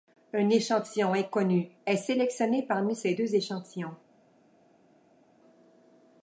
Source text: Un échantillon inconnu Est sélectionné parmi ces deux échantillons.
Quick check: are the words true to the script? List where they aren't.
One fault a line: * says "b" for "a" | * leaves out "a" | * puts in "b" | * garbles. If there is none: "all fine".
all fine